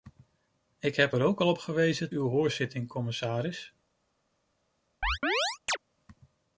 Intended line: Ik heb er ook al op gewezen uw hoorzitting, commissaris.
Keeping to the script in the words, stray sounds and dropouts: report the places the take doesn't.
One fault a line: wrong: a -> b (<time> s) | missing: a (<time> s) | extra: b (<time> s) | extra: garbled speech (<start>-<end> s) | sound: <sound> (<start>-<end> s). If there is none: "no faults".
sound: chirp (5.0-5.8 s)